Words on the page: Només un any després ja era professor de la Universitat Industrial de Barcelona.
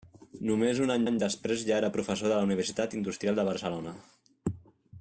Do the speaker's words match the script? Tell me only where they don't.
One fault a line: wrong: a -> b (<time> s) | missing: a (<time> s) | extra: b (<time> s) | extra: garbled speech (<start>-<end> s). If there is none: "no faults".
extra: any (1.1 s)